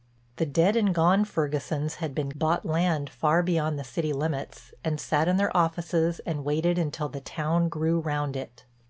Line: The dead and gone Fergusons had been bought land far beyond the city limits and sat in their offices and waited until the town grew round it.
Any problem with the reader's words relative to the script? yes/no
no